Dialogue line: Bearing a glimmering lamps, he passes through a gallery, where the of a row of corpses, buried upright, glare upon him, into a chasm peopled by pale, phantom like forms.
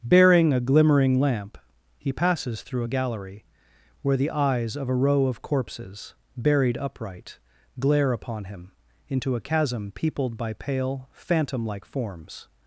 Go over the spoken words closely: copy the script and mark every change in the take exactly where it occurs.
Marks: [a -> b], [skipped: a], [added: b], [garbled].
Bearing a glimmering [lamps, -> lamp] he passes through a gallery, where the [added: eyes] of a row of corpses, buried upright, glare upon him, into a chasm peopled by pale, phantom like forms.